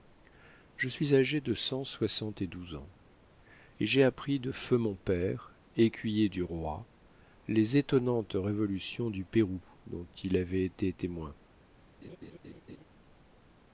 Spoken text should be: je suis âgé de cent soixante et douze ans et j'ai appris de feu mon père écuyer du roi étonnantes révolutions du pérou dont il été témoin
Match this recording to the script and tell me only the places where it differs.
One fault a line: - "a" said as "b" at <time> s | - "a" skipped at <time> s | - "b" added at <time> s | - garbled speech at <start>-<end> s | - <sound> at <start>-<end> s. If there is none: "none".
- "les" added at 7.5 s
- "avait" added at 10.4 s
- laugh at 12.0-12.8 s